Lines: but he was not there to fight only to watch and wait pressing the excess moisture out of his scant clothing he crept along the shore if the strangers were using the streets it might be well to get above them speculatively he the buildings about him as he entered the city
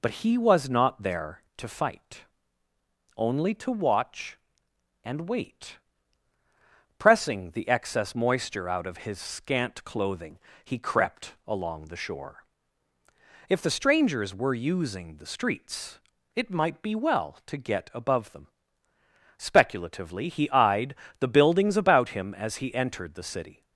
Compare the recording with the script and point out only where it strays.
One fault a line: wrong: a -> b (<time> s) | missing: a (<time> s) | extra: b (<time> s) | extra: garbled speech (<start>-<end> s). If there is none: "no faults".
extra: eyed (20.5 s)